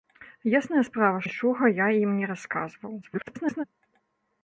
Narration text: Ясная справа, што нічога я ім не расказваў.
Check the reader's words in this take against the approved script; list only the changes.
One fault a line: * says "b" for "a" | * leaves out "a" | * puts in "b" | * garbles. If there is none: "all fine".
* leaves out "што"
* garbles